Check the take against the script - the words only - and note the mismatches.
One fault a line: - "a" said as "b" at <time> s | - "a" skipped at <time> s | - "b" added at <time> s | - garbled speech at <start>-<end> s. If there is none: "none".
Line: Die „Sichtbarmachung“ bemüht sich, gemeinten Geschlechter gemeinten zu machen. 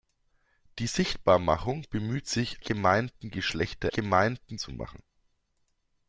none